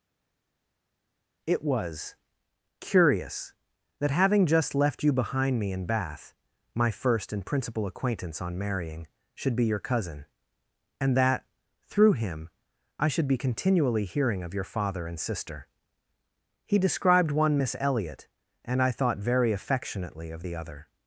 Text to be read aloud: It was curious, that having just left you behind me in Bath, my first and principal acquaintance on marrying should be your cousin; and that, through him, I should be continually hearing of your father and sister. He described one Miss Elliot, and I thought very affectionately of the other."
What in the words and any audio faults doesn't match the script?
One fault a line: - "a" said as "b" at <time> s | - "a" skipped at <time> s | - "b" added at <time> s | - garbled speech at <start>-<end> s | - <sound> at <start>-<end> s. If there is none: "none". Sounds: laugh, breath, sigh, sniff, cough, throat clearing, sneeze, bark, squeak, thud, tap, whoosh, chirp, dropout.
none